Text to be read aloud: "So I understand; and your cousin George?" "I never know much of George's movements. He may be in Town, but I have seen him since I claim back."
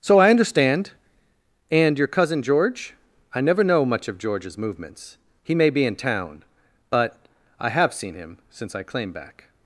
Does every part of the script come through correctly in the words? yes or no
yes